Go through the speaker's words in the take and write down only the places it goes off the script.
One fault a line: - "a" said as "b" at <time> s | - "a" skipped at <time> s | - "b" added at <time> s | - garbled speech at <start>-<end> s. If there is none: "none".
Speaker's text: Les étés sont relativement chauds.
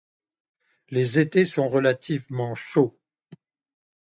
none